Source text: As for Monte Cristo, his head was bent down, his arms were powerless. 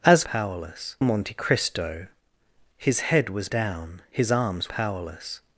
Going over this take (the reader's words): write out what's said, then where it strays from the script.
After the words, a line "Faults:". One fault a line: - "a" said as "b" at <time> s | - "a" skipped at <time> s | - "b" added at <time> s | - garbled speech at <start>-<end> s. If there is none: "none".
As powerless Monte Cristo, his head was down, his arms powerless.
Faults:
- "for" said as "powerless" at 0.2 s
- "bent" skipped at 3.5 s
- "were" skipped at 4.7 s